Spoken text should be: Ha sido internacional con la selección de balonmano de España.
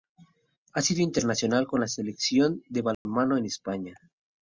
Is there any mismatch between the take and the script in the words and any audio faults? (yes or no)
yes